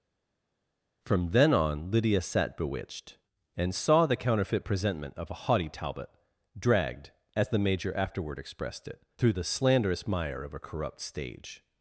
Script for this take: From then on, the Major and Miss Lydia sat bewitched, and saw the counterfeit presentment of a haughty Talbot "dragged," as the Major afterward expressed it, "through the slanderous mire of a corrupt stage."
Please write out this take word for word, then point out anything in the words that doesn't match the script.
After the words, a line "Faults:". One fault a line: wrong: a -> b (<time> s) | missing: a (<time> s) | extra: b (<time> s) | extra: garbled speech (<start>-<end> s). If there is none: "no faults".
From then on, Lydia sat bewitched, and saw the counterfeit presentment of a haughty Talbot "dragged," as the Major afterward expressed it, "through the slanderous mire of a corrupt stage."
Faults:
missing: the Major and Miss (1.9 s)